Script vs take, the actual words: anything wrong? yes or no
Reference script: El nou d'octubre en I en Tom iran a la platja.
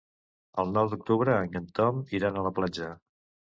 no